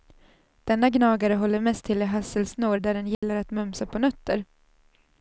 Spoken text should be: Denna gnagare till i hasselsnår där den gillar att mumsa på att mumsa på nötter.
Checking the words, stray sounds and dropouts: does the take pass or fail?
fail